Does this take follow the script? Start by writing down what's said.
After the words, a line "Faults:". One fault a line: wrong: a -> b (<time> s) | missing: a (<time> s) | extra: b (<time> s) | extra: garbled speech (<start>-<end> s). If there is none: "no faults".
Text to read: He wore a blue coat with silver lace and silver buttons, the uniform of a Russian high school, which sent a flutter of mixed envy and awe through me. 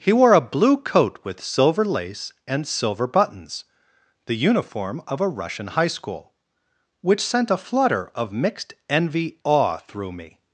He wore a blue coat with silver lace and silver buttons, the uniform of a Russian high school, which sent a flutter of mixed envy awe through me.
Faults:
missing: and (9.4 s)